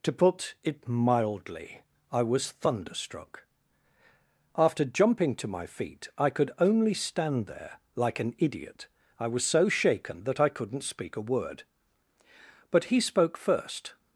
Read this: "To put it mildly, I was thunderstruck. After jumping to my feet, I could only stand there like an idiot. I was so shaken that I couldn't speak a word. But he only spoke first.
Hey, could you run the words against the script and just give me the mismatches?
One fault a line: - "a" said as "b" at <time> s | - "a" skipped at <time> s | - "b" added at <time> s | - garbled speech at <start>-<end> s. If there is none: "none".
- "only" skipped at 13.0 s